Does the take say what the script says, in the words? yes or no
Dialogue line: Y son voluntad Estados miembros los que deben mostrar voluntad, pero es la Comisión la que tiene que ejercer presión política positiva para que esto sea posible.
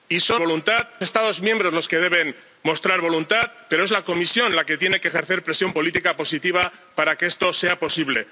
yes